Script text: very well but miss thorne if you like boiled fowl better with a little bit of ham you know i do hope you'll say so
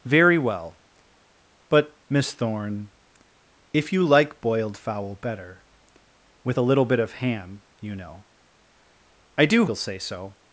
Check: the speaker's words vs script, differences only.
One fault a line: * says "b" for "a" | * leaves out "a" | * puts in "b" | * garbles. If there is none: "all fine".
* leaves out "hope"